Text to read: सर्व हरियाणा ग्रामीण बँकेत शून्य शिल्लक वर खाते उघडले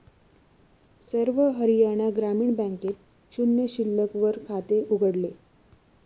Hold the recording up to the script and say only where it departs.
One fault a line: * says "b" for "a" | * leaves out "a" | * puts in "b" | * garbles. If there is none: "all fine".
all fine